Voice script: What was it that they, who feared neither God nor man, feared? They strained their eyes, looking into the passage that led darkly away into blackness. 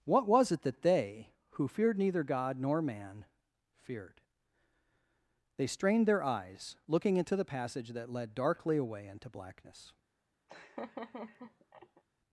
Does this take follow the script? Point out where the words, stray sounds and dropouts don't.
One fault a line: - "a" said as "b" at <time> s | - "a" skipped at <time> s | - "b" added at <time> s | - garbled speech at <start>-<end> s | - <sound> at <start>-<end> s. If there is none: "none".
- laugh at 10.5-12.0 s